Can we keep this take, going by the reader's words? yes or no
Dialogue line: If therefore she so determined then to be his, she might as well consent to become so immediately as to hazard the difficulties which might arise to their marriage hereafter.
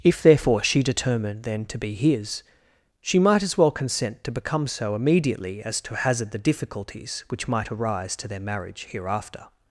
no